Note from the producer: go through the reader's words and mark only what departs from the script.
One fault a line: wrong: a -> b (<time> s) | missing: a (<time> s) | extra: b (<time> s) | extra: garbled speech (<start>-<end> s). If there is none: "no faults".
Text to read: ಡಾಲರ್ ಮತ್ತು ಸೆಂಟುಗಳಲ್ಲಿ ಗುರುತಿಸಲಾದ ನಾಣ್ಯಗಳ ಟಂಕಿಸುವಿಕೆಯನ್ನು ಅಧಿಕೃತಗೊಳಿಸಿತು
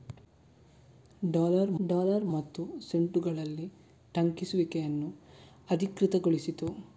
extra: ಡಾಲರ್ (1.8 s)
missing: ಗುರುತಿಸಲಾದ ನಾಣ್ಯಗಳ (3.7 s)